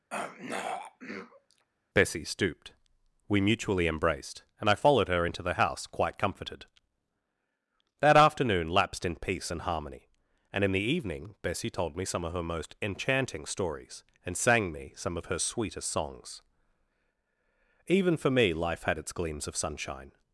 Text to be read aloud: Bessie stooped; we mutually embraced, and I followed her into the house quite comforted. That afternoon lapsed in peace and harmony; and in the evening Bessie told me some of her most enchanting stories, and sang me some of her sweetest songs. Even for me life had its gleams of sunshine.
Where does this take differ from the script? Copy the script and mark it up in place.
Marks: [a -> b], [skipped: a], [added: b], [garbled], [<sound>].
[throat clearing] Bessie stooped; we mutually embraced, and I followed her into the house quite comforted. That afternoon lapsed in peace and harmony; and in the evening Bessie told me some of her most enchanting stories, and sang me some of her sweetest songs. Even for me life had its gleams of sunshine.